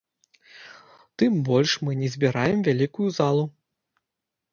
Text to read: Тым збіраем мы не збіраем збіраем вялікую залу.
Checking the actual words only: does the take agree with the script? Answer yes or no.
no